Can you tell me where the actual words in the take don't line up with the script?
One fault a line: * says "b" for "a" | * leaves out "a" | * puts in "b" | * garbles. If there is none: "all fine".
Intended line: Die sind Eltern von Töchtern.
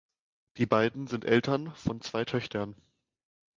* puts in "beiden"
* puts in "zwei"